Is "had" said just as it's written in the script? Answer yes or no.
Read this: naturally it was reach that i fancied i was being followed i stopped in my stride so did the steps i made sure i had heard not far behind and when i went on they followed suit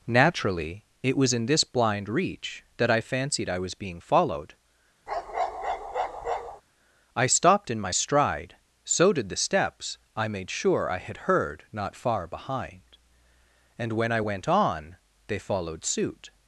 yes